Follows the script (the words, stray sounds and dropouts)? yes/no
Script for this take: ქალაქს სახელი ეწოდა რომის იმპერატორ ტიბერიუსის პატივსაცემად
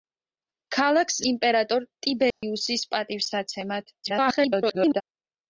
no